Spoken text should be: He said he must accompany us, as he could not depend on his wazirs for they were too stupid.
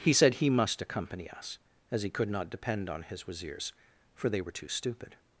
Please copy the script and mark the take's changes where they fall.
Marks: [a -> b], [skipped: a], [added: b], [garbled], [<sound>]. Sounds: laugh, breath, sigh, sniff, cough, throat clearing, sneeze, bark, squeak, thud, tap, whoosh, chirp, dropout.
He said he must accompany us, as he could not depend on his wazirs for they were too stupid.